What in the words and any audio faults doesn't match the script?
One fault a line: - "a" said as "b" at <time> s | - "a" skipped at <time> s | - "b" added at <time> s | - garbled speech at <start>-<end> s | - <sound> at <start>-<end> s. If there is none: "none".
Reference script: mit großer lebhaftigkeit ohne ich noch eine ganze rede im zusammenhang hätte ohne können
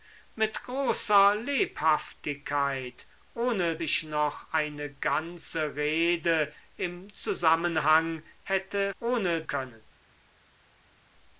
none